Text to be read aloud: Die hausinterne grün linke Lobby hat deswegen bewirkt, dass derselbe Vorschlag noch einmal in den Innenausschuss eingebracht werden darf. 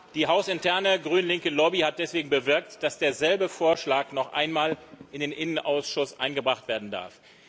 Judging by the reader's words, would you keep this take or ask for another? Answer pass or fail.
pass